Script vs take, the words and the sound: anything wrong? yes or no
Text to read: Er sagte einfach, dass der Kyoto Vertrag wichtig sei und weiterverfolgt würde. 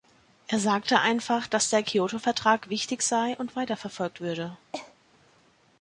yes